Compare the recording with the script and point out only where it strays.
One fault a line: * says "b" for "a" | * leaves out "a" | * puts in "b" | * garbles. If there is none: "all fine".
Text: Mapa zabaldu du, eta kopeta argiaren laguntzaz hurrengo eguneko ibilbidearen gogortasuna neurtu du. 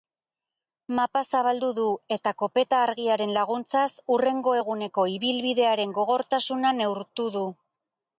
all fine